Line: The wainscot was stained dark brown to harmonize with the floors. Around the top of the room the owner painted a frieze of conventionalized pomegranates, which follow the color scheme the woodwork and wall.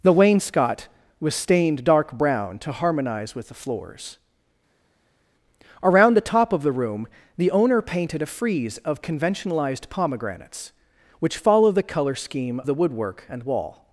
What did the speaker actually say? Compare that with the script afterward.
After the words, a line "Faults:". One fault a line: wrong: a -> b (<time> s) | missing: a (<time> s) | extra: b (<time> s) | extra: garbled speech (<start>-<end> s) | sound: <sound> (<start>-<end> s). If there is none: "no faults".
The wainscot was stained dark brown to harmonize with the floors. Around the top of the room the owner painted a frieze of conventionalized pomegranates, which follow the color scheme the woodwork and wall.
Faults:
no faults